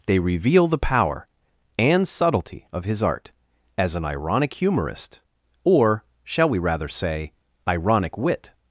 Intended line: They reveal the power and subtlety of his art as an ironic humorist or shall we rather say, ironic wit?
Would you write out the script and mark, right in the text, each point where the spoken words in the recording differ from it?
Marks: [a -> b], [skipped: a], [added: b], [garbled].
They reveal the power and subtlety of his art as an ironic humorist or shall we rather say, ironic wit?